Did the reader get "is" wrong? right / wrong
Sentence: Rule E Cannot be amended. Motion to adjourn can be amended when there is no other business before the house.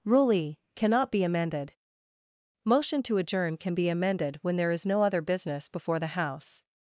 right